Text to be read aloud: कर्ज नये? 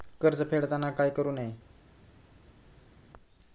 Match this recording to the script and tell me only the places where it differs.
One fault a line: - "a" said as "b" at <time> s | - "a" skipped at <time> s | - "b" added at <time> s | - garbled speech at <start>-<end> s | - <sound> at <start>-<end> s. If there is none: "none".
- "फेडताना काय करु" added at 0.4 s